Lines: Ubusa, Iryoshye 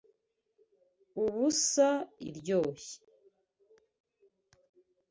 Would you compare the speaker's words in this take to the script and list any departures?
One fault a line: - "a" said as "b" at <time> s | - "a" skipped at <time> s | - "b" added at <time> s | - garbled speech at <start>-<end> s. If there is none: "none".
none